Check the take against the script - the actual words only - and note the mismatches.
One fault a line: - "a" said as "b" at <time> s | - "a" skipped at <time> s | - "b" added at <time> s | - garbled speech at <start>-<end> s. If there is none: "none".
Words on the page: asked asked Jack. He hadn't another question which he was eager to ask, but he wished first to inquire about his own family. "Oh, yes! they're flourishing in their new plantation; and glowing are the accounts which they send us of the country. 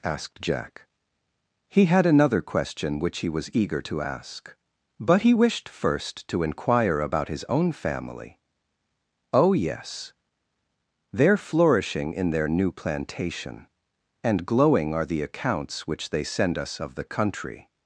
- "asked" skipped at 0.4 s
- "hadn't" said as "had" at 1.9 s